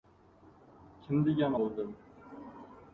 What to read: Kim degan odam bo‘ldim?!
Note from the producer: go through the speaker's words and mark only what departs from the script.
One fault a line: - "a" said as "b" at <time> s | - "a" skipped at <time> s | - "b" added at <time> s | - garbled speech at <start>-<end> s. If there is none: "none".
- "odam" skipped at 1.6 s